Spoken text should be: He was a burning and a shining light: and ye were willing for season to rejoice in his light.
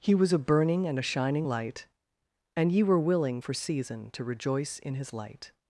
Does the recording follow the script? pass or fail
pass